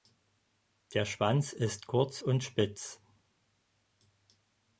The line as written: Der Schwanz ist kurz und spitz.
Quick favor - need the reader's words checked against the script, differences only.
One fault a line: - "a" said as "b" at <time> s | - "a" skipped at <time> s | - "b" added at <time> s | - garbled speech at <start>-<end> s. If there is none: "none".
none